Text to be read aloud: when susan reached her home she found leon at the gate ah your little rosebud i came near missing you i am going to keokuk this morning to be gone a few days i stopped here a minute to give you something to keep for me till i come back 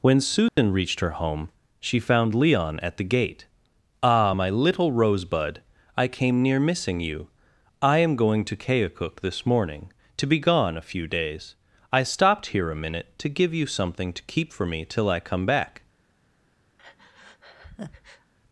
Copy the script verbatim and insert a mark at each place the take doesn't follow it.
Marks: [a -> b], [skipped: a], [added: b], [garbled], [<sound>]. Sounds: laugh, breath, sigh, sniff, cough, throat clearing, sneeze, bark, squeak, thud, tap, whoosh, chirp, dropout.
when susan [dropout] reached her home she found leon at the gate ah [your -> my] little rosebud i came near missing you i am going to keokuk this morning to be gone a few days i stopped here a minute to give you something to keep for me till i come back [breath]